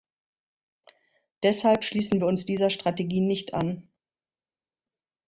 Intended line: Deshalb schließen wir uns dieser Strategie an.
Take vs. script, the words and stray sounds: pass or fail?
fail